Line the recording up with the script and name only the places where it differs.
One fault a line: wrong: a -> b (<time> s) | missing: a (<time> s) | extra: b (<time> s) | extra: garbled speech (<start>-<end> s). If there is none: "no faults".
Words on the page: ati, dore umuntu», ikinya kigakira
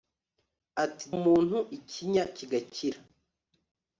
missing: dore (1.1 s)